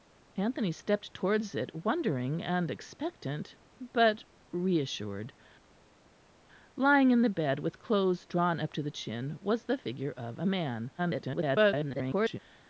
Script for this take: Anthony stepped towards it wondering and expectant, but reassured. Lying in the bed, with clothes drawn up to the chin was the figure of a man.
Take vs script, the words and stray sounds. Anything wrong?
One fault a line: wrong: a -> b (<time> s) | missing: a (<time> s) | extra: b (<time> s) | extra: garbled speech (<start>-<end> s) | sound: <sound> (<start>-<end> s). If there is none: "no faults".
extra: garbled speech (11.0-12.4 s)